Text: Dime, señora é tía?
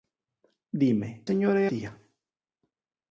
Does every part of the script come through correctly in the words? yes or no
yes